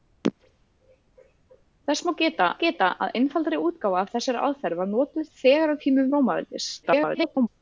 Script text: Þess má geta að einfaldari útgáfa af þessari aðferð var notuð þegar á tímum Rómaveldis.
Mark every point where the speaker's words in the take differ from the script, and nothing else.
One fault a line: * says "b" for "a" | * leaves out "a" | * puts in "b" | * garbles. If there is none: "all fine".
* puts in "geta"
* garbles